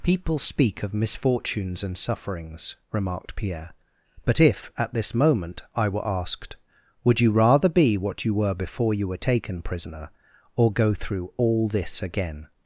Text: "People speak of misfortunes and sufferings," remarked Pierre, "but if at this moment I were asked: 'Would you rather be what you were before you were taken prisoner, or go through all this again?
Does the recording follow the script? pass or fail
pass